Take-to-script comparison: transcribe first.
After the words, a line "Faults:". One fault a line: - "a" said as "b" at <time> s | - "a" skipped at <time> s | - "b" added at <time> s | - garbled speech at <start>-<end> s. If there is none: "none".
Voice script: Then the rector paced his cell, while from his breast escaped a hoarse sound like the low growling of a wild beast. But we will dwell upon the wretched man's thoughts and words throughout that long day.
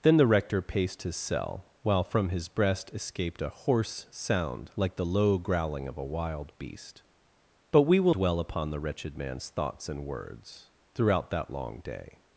Then the rector paced his cell, while from his breast escaped a hoarse sound like the low growling of a wild beast. But we will dwell upon the wretched man's thoughts and words throughout that long day.
Faults:
none